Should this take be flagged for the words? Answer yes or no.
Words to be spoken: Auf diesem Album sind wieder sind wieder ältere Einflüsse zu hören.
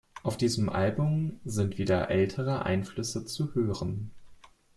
yes